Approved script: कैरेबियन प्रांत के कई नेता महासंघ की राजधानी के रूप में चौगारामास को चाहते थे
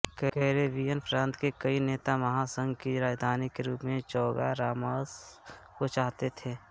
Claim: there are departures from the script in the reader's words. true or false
false